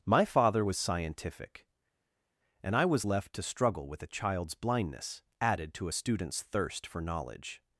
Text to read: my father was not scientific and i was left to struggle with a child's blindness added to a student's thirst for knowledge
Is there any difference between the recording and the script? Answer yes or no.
yes